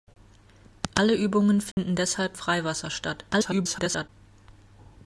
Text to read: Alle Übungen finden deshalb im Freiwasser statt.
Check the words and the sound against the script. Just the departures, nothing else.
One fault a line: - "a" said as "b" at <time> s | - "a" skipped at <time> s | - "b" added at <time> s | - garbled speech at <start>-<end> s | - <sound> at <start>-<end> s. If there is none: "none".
- dropout at 1.7-1.8 s
- "im" skipped at 2.4 s
- garbled speech at 3.3-4.1 s